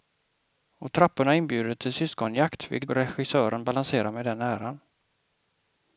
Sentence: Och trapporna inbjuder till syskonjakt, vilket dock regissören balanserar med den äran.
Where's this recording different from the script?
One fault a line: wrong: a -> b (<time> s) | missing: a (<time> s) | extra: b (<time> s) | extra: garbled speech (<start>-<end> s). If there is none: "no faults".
missing: dock (2.9 s)